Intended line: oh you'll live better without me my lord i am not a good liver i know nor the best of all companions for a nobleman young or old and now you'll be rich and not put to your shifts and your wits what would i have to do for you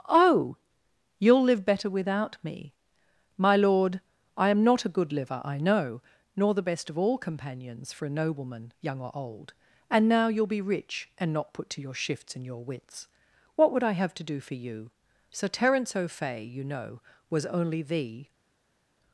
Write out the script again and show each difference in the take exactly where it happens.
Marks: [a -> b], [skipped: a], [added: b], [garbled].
oh you'll live better without me my lord i am not a good liver i know nor the best of all companions for a nobleman young or old and now you'll be rich and not put to your shifts and your wits what would i have to do for you [added: sir terence o'fay you know was only the]